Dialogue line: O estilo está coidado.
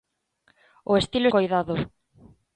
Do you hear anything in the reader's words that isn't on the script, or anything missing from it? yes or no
yes